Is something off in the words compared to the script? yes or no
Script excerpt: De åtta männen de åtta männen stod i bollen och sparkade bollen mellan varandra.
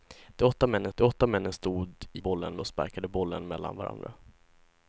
no